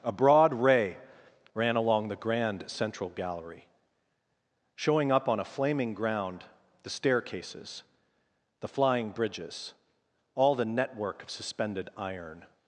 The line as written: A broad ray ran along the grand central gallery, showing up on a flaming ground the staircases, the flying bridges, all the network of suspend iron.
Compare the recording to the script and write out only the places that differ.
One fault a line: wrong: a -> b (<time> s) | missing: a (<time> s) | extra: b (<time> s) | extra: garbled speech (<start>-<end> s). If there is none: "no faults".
wrong: suspend -> suspended (11.3 s)